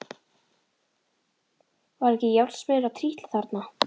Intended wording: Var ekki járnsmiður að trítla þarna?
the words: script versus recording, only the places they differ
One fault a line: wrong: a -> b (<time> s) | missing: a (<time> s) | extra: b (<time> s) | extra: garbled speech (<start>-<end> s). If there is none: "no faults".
no faults